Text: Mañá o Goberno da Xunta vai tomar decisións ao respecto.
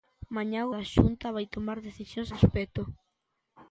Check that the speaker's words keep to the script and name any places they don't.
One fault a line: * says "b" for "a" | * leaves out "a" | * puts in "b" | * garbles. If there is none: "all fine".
* leaves out "Goberno"
* leaves out "ao"